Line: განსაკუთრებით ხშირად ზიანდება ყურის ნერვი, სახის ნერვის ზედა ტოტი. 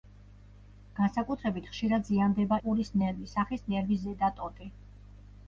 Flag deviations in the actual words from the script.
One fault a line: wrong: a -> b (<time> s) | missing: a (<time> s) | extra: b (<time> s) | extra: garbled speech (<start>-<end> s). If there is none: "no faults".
no faults